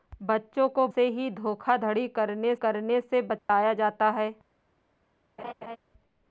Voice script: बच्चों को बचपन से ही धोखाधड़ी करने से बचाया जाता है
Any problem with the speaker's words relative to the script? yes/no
yes